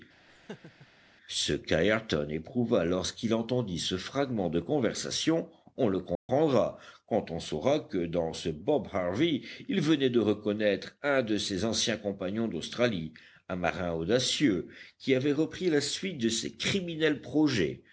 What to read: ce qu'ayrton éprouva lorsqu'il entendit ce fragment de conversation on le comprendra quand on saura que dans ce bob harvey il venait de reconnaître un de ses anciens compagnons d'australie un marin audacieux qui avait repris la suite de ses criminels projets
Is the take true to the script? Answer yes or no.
yes